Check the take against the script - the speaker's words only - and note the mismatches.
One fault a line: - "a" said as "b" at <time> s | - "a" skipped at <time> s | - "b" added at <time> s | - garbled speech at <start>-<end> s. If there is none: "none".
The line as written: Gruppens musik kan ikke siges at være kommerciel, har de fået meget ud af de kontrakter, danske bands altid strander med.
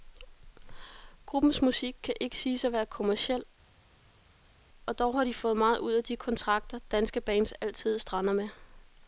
- "og dog" added at 4.9 s